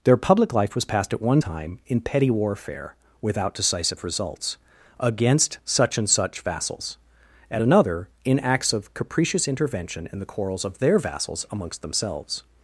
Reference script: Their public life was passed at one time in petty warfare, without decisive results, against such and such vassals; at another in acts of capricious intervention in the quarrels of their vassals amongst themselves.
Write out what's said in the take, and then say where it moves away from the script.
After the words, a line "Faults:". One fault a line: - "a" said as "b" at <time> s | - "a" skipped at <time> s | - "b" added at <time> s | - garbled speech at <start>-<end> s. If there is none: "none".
Their public life was passed at one time in petty warfare, without decisive results, against such and such vassals; at another in acts of capricious intervention in the quarrels of their vassals amongst themselves.
Faults:
none